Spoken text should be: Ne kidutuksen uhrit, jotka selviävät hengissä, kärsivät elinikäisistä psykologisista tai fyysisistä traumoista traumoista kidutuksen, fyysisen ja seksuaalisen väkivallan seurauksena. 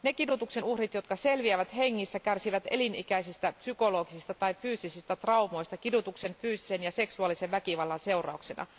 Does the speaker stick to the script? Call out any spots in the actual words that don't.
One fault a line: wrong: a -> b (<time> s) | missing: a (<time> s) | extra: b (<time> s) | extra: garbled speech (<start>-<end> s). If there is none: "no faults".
missing: traumoista (5.8 s)